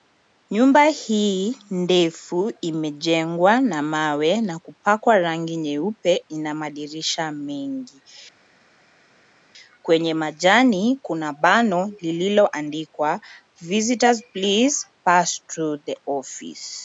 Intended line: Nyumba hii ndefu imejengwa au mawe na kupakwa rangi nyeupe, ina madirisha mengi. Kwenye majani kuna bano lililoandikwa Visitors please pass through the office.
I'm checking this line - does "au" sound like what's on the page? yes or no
no